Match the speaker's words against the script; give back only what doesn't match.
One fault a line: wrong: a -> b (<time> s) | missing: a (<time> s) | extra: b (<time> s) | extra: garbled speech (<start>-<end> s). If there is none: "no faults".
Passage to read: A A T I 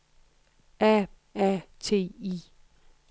no faults